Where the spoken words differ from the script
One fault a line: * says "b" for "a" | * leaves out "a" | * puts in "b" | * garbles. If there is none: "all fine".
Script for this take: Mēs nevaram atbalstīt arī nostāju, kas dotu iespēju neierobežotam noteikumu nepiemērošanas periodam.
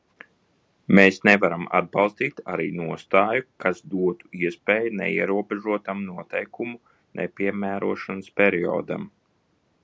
all fine